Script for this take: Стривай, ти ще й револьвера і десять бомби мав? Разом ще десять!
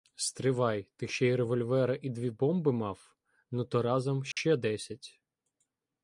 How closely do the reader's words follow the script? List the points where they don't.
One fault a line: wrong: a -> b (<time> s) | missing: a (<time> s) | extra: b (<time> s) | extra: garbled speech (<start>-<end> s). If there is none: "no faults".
wrong: десять -> дві (2.1 s)
extra: Ну то (3.5 s)